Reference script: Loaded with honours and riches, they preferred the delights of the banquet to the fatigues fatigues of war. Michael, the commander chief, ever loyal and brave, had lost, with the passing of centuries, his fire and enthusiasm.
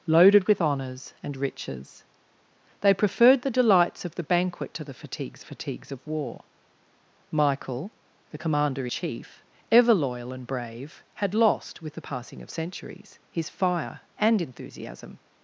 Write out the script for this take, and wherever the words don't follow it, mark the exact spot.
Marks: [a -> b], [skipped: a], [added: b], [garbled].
Loaded with honours and riches, they preferred the delights of the banquet to the fatigues fatigues of war. Michael, the commander chief, ever loyal and brave, had lost, with the passing of centuries, his fire and enthusiasm.